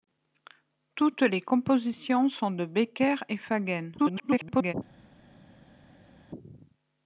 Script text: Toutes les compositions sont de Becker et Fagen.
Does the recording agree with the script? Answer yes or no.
no